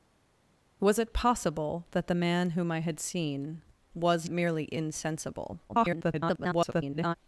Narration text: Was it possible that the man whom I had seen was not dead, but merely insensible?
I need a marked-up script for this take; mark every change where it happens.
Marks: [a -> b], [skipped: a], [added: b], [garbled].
Was it possible that the man whom I had seen was [skipped: not dead, but] merely insensible? [garbled]